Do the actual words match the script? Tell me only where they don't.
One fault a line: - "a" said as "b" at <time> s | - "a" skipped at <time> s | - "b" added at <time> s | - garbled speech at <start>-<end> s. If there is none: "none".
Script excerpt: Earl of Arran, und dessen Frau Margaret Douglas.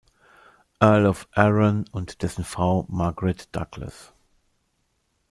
none